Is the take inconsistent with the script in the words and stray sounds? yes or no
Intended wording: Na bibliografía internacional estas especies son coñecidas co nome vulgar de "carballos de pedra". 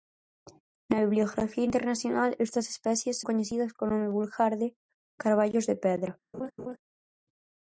yes